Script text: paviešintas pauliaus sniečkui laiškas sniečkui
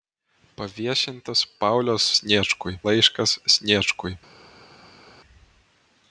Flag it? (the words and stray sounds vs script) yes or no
no